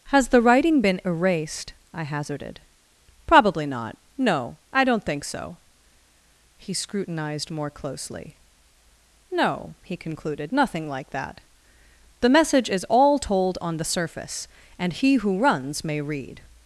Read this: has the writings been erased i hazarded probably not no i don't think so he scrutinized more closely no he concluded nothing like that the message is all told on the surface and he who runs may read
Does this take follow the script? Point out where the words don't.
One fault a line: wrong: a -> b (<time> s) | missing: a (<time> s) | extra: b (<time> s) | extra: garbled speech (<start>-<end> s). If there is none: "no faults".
wrong: writings -> writing (0.4 s)